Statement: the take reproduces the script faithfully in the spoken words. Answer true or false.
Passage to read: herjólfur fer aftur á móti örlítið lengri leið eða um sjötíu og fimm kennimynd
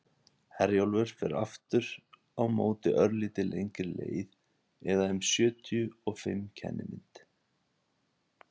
true